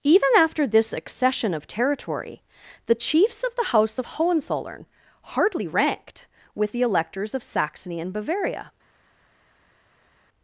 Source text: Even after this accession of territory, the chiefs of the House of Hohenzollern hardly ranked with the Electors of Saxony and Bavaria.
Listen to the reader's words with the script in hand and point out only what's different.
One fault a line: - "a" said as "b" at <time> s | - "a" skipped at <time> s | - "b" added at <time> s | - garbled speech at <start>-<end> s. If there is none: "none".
none